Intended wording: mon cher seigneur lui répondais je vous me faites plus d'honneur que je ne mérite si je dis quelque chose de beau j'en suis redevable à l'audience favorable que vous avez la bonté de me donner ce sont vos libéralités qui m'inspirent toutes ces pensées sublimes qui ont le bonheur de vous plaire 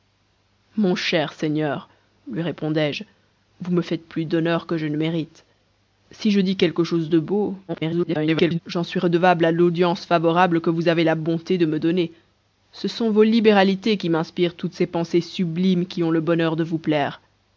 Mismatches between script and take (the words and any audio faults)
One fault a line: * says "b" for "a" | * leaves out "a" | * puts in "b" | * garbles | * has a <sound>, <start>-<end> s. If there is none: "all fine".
* garbles